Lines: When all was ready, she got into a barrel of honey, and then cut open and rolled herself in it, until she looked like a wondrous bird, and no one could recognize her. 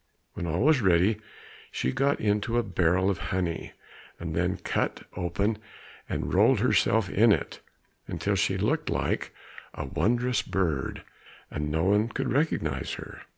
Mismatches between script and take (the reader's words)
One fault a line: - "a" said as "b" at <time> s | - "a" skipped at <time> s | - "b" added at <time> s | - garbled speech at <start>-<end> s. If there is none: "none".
none